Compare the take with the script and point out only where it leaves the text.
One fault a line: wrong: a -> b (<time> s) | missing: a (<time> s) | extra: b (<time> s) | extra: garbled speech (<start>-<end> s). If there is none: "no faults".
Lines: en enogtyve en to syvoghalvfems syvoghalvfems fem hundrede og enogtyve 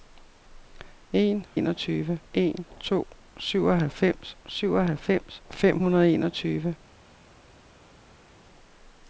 no faults